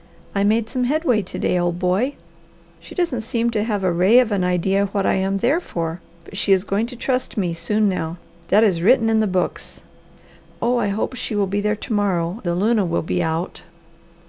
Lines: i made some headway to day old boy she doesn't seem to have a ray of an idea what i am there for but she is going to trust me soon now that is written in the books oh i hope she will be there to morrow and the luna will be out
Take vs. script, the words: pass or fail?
fail